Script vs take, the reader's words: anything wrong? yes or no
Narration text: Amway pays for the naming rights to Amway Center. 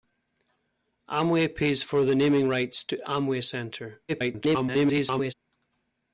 yes